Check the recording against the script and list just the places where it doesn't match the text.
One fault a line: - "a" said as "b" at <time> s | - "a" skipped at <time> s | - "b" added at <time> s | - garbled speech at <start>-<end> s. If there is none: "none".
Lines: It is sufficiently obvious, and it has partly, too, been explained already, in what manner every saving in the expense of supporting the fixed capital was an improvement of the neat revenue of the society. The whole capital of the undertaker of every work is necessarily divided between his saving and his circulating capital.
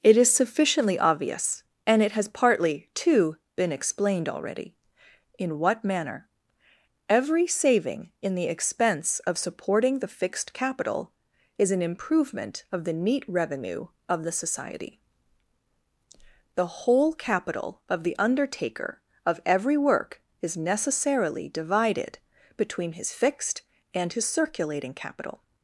- "was" said as "is" at 11.6 s
- "saving" said as "fixed" at 23.1 s